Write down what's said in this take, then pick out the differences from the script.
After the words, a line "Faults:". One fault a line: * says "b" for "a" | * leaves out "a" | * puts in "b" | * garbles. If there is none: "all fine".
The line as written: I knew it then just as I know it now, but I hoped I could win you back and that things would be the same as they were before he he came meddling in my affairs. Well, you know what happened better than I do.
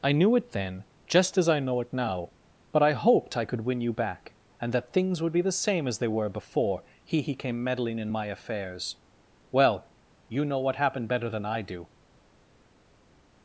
I knew it then just as I know it now, but I hoped I could win you back and that things would be the same as they were before he he came meddling in my affairs. Well, you know what happened better than I do.
Faults:
all fine